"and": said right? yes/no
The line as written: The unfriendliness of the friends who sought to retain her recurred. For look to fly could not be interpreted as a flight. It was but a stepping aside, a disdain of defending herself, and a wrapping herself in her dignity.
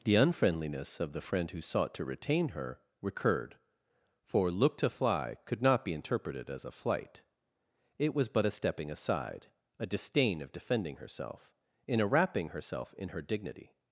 no